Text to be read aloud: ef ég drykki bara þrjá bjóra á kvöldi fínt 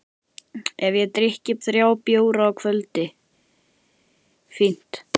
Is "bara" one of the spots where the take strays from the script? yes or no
yes